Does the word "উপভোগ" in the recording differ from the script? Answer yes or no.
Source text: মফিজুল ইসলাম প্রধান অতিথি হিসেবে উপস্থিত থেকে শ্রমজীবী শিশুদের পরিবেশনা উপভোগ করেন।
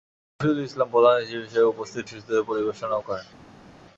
yes